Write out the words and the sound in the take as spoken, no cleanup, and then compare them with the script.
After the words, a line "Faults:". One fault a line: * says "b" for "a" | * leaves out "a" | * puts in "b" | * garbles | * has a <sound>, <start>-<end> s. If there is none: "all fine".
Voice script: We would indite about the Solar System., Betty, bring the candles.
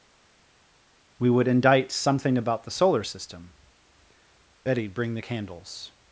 We would indite something about the Solar System., Betty, bring the candles.
Faults:
* puts in "something"